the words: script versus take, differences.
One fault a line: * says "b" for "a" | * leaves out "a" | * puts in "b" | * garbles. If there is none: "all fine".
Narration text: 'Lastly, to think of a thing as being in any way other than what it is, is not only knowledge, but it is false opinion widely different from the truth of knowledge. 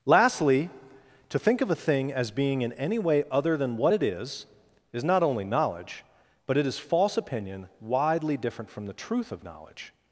all fine